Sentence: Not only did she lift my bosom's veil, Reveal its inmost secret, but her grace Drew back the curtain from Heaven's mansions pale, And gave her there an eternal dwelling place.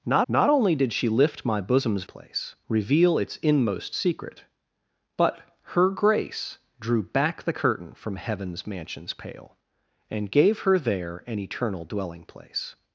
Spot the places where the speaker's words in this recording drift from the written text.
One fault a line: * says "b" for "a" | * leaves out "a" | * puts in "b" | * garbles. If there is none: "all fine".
* puts in "not"
* says "place" for "veil"